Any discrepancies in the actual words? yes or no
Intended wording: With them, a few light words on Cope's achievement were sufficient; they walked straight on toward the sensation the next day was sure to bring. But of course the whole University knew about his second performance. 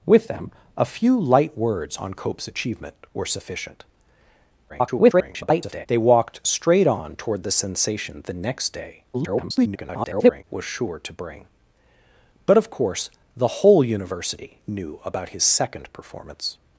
yes